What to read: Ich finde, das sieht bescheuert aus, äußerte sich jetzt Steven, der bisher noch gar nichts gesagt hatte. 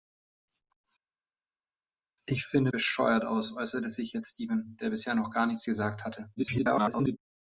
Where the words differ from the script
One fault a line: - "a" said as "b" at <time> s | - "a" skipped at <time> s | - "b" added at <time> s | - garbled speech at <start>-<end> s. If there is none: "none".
- "das sieht" skipped at 2.7 s
- garbled speech at 6.4-7.2 s